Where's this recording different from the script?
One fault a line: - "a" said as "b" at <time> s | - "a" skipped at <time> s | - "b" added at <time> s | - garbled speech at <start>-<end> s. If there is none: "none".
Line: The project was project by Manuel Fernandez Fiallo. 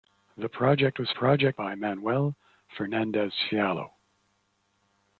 none